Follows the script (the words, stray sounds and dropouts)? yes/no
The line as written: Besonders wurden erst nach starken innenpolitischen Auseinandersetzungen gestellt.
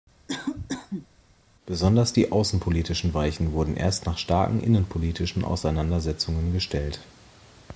no